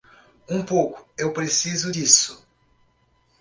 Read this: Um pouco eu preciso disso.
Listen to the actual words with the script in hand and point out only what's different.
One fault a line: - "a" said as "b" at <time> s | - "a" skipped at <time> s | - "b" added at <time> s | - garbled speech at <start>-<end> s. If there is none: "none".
none